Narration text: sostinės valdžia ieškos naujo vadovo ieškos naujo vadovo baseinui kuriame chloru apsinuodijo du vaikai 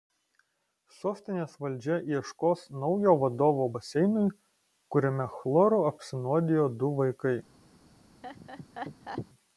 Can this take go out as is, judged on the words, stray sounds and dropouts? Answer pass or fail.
fail